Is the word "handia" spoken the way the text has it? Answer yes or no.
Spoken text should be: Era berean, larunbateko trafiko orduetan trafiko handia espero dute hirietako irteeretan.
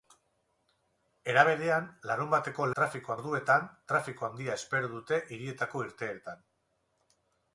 yes